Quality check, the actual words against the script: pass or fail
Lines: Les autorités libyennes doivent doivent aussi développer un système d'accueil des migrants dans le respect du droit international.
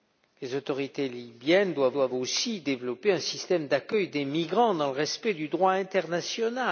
pass